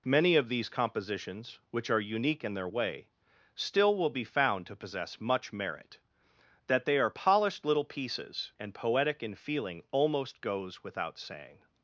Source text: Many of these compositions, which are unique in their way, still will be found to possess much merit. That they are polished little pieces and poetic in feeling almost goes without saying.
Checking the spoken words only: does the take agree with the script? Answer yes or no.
yes